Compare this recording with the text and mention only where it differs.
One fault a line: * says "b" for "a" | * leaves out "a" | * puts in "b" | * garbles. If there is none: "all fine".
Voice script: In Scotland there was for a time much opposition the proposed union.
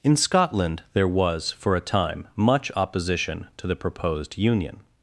* puts in "to"